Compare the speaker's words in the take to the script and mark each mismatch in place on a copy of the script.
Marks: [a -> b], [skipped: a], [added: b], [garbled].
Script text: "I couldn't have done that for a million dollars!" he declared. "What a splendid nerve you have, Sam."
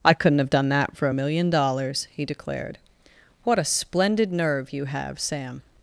"I couldn't have done that for a million dollars!" he declared. "What a splendid nerve you have, Sam."